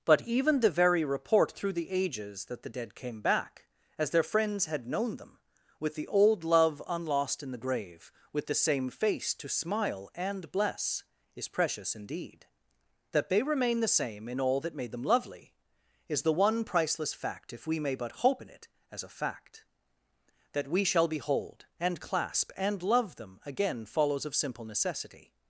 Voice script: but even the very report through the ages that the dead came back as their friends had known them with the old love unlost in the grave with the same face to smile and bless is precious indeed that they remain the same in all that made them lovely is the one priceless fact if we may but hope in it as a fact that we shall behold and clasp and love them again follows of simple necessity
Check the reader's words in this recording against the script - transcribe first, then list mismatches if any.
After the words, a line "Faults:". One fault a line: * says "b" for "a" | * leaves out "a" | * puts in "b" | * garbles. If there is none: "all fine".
but even the very report through the ages that the dead came back as their friends had known them with the old love unlost in the grave with the same face to smile and bless is precious indeed that they remain the same in all that made them lovely is the one priceless fact if we may but hope in it as a fact that we shall behold and clasp and love them again follows of simple necessity
Faults:
all fine